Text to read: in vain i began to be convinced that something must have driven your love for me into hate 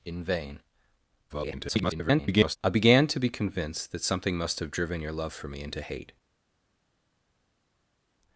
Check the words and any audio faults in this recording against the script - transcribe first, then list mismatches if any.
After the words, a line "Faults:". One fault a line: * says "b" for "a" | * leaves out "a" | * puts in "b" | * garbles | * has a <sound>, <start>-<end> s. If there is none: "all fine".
in vain [garbled] i began to be convinced that something must have driven your love for me into hate
Faults:
* garbles